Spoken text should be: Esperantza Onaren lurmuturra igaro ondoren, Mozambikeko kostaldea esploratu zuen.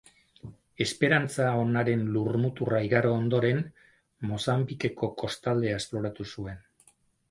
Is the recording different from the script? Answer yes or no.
no